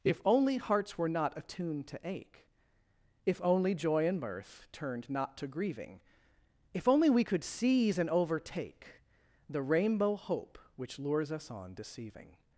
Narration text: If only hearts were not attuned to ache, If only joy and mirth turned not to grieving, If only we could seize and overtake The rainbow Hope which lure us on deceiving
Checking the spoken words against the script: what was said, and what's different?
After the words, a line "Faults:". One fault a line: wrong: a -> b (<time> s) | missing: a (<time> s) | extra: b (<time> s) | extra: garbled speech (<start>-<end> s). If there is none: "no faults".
If only hearts were not attuned to ache, If only joy and mirth turned not to grieving, If only we could seize and overtake The rainbow Hope which lures us on deceiving
Faults:
wrong: lure -> lures (11.0 s)